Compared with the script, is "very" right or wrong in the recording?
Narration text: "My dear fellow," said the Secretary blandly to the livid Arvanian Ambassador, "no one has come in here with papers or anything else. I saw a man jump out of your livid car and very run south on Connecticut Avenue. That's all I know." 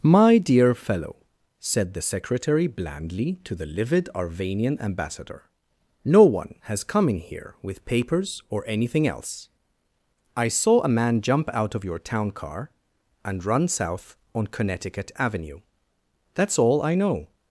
wrong